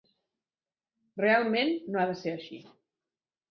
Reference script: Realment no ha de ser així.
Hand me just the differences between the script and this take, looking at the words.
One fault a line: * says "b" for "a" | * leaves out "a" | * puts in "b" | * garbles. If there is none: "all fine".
all fine